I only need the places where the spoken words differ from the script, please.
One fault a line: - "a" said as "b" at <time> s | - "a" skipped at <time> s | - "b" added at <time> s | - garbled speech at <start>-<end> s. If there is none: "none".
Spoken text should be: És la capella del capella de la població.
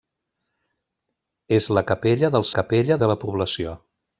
none